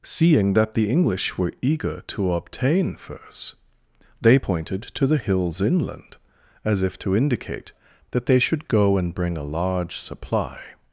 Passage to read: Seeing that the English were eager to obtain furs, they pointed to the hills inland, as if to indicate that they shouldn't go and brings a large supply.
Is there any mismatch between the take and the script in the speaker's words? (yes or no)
yes